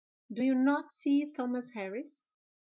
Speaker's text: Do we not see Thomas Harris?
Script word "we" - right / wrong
wrong